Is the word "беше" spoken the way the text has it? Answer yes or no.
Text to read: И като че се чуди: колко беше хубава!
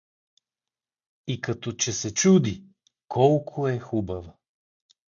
no